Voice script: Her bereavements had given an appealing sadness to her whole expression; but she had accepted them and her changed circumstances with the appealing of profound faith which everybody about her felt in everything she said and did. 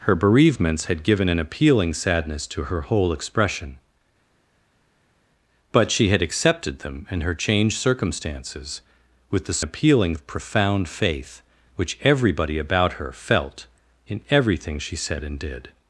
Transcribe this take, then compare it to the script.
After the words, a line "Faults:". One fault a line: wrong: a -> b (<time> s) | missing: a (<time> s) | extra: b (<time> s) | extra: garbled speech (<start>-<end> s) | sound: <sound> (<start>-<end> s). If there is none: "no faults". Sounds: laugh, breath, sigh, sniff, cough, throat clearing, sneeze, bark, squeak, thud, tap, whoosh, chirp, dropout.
Her bereavements had given an appealing sadness to her whole expression; but she had accepted them and her changed circumstances with the appealing of profound faith which everybody about her felt in everything she said and did.
Faults:
no faults